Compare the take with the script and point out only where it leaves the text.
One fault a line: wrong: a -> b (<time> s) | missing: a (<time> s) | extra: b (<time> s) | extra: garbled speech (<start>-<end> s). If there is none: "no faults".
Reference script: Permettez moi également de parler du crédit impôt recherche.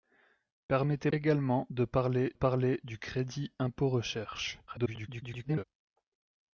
missing: moi (1.1 s)
extra: parler (2.3 s)
extra: garbled speech (4.7-5.6 s)